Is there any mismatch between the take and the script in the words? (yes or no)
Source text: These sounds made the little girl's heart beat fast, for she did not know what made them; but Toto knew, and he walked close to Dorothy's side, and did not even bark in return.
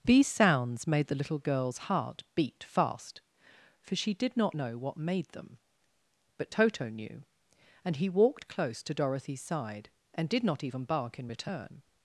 no